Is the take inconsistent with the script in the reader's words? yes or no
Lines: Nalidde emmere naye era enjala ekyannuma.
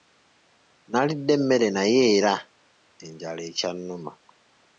no